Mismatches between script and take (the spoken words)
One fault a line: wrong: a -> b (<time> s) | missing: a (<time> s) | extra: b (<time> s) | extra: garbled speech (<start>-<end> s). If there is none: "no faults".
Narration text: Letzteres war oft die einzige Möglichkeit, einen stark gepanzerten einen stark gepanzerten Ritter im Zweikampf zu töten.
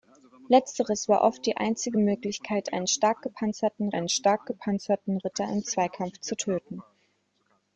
no faults